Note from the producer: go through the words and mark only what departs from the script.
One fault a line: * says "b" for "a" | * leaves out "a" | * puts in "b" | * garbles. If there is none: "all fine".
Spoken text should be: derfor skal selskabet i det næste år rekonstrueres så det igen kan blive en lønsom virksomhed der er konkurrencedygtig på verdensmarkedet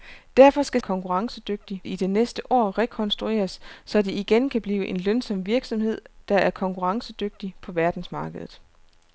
* says "konkurrencedygtig" for "selskabet"